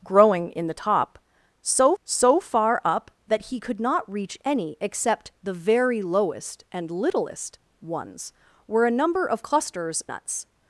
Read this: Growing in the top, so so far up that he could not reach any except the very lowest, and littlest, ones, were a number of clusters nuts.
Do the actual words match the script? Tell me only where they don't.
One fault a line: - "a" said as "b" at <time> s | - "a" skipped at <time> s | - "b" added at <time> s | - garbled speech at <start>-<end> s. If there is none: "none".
none